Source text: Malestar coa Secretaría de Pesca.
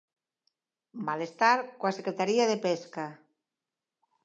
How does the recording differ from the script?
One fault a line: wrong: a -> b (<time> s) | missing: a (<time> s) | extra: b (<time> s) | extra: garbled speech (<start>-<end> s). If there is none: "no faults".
no faults